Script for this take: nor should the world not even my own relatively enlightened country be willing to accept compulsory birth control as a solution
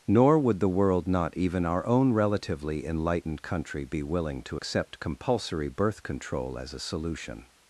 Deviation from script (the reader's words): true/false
true